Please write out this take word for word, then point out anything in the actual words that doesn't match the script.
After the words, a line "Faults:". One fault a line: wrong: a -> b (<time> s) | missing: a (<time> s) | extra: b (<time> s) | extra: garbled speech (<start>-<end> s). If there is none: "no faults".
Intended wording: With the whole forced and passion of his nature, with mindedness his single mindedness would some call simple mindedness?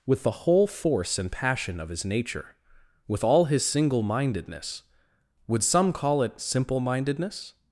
With the whole force and passion of his nature, with all his single mindedness would some call it simple mindedness?
Faults:
wrong: forced -> force (0.7 s)
wrong: mindedness -> all (3.2 s)
extra: it (6.2 s)